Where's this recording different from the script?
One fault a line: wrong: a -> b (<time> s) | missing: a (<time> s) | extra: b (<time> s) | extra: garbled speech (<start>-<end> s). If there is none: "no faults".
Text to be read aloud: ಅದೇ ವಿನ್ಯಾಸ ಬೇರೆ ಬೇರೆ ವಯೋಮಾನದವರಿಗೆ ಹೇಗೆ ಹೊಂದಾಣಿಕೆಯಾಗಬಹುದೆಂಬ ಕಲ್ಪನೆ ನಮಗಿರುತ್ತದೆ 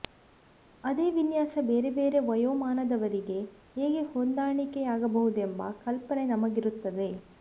no faults